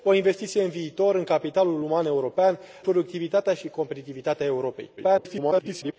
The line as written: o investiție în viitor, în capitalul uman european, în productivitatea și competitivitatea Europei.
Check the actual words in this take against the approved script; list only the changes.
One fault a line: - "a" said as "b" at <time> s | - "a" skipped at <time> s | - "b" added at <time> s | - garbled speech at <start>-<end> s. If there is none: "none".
- "în" skipped at 2.6 s
- garbled speech at 5.0-5.9 s